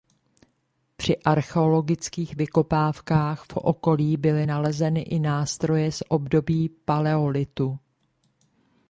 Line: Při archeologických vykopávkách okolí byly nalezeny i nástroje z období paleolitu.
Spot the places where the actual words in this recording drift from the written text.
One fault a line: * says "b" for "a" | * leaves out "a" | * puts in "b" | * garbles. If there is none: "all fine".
* puts in "v"